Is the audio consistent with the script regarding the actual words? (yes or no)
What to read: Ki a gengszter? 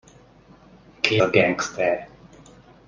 yes